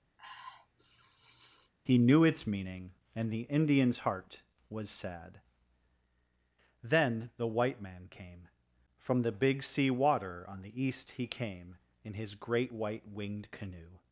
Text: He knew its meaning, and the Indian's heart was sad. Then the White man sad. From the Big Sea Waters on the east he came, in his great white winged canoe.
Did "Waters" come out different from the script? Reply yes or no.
yes